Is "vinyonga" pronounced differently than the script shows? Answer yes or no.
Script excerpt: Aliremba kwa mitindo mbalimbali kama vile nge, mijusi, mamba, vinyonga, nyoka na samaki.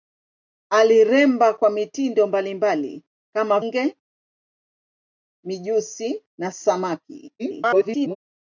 yes